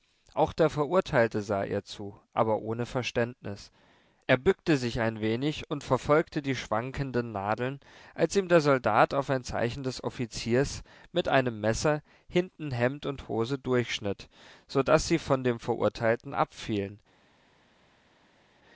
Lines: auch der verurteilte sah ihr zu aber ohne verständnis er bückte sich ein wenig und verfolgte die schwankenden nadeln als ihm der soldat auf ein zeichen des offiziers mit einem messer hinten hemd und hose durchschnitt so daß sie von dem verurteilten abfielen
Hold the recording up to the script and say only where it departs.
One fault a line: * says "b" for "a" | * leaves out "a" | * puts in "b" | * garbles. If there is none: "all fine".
all fine